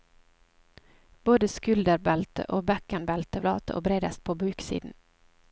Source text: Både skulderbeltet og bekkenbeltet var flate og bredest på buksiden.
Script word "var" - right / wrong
wrong